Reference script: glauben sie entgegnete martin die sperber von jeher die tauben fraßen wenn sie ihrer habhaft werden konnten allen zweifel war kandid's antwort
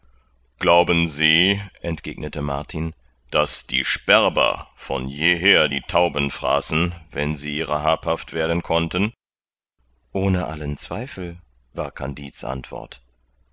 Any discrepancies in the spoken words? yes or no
yes